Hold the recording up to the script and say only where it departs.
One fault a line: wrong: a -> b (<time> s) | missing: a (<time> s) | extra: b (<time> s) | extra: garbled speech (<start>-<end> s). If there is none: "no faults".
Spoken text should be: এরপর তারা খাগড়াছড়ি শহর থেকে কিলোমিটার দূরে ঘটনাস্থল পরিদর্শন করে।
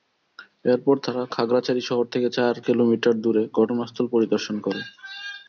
extra: চার (2.4 s)